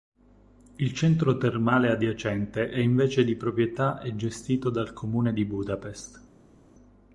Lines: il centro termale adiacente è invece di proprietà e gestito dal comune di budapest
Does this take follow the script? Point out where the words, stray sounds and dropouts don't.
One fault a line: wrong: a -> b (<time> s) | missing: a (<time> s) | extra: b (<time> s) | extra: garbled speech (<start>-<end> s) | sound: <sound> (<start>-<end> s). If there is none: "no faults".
no faults